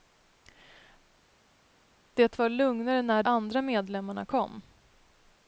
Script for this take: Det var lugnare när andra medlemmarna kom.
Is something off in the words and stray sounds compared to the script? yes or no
no